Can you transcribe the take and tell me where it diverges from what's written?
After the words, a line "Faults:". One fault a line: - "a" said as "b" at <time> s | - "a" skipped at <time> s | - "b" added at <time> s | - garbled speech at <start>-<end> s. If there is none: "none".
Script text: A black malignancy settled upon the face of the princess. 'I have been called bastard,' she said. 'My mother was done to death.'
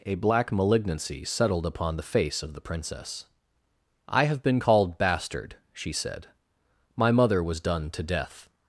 A black malignancy settled upon the face of the princess. 'I have been called bastard,' she said. 'My mother was done to death.'
Faults:
none